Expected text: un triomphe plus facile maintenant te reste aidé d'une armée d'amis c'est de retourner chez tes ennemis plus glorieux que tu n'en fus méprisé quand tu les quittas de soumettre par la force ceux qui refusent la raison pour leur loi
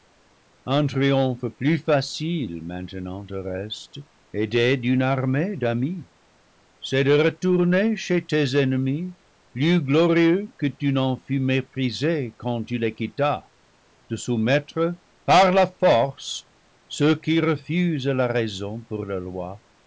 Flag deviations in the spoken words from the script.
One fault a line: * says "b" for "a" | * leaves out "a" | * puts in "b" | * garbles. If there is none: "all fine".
all fine